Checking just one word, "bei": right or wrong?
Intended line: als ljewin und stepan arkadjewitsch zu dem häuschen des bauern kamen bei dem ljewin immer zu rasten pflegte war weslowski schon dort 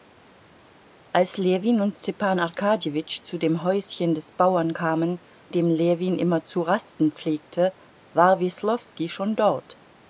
wrong